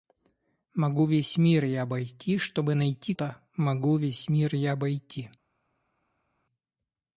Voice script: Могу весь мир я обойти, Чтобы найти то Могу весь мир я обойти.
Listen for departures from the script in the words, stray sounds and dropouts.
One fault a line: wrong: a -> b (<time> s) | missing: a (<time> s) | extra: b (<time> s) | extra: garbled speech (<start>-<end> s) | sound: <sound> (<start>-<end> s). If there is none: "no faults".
no faults